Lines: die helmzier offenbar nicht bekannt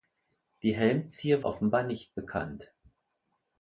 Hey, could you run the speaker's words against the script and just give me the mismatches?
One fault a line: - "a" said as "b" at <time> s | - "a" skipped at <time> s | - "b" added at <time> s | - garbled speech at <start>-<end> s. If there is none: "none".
none